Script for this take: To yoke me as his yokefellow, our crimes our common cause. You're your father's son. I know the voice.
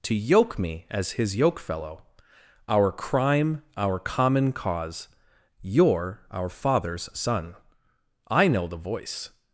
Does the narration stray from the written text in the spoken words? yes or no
yes